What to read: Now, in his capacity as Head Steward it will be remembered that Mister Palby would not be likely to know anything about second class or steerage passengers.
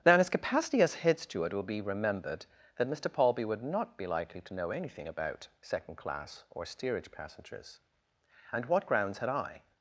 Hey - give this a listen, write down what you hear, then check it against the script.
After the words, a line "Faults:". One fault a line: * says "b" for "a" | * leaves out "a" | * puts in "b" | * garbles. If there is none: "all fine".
Now, in his capacity as Head Steward it will be remembered that Mister Palby would not be likely to know anything about second class or steerage passengers. And what grounds had I
Faults:
* puts in "And what grounds had I"